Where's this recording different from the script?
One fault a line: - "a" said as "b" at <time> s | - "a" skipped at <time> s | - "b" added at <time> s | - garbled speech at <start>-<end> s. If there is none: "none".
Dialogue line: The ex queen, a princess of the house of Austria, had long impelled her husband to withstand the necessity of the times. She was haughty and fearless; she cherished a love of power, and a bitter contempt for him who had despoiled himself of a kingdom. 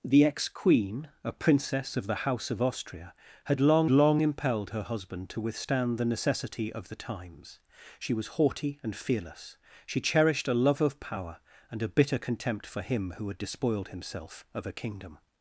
- "long" added at 3.9 s